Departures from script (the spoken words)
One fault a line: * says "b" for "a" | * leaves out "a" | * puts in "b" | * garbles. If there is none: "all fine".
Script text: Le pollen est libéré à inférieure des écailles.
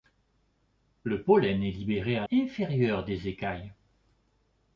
all fine